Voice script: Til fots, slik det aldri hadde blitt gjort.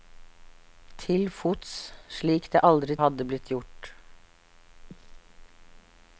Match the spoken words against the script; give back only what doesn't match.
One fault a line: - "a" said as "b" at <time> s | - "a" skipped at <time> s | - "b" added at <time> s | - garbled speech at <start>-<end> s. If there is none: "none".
none